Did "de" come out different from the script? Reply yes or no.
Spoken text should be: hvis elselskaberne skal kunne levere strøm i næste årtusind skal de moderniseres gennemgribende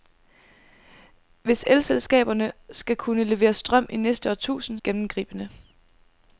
yes